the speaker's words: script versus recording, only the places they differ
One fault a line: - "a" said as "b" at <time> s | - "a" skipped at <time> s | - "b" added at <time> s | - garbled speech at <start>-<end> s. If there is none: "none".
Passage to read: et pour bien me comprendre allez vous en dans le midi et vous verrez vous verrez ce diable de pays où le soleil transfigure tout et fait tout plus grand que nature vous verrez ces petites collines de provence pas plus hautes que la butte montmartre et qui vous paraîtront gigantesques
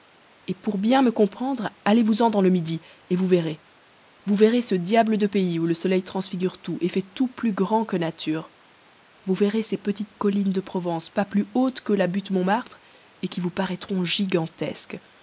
none